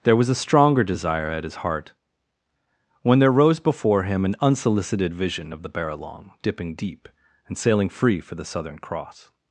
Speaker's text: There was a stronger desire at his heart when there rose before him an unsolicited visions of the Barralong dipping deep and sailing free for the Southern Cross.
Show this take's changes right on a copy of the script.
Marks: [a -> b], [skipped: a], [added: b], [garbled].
There was a stronger desire at his heart when there rose before him an unsolicited [visions -> vision] of the Barralong dipping deep and sailing free for the Southern Cross.